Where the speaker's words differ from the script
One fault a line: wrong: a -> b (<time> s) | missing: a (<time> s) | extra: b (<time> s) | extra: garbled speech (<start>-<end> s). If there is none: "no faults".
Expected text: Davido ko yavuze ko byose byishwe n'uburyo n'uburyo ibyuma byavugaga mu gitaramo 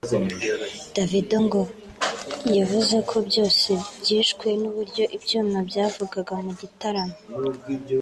wrong: ko -> ngo (1.5 s)
missing: n'uburyo (5.0 s)